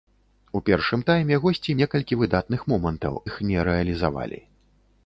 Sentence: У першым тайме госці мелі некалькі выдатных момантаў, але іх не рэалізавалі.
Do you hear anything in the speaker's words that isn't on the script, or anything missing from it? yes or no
yes